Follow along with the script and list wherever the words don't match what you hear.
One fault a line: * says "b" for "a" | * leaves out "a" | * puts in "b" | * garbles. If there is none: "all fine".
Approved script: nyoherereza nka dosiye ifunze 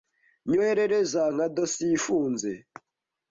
all fine